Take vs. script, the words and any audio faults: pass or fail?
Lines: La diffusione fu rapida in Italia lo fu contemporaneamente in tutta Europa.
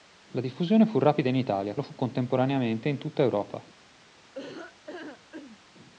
fail